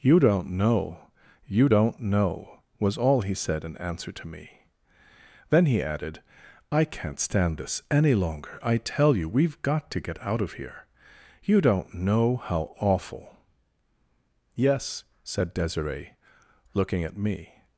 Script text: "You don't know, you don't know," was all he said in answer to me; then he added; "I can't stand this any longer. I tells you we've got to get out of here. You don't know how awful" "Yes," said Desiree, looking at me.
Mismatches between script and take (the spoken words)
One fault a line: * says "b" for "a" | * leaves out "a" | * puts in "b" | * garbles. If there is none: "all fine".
* says "tell" for "tells"